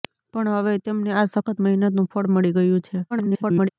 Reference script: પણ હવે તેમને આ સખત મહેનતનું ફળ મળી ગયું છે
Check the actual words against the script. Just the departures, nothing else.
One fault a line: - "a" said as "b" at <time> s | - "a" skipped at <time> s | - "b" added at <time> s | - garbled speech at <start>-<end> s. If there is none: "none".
- garbled speech at 3.1-3.7 s